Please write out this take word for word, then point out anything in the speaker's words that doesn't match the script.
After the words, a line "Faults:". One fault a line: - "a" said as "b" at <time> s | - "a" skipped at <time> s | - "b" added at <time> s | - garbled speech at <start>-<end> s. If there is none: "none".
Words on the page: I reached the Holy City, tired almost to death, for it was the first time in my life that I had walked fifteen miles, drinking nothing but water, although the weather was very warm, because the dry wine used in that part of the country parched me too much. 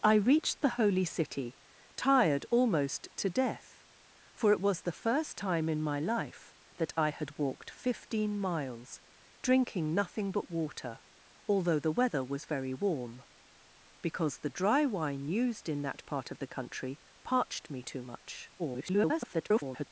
I reached the Holy City, tired almost to death, for it was the first time in my life that I had walked fifteen miles, drinking nothing but water, although the weather was very warm, because the dry wine used in that part of the country parched me too much. [garbled]
Faults:
- garbled speech at 18.6-19.9 s